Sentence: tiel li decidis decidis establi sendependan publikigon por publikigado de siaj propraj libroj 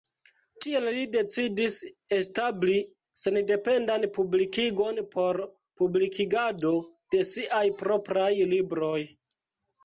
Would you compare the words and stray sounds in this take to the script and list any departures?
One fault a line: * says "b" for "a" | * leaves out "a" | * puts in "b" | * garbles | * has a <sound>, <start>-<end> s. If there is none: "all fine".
* leaves out "decidis"